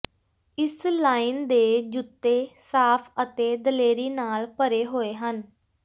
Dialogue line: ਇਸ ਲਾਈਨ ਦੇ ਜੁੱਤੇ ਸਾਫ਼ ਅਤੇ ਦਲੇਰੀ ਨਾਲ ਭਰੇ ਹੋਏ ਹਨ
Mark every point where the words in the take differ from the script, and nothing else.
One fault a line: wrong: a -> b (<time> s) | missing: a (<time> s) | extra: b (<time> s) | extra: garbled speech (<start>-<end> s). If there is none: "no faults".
no faults